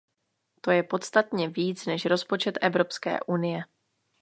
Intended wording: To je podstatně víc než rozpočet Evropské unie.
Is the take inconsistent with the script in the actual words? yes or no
no